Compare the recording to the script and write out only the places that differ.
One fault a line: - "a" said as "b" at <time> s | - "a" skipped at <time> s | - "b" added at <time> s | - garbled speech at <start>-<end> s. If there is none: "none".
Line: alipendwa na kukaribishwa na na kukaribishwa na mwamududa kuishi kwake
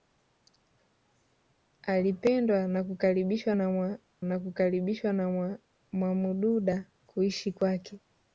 none